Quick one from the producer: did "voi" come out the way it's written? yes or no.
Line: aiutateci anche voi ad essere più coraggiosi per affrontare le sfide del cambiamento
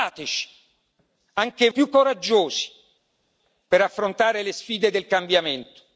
no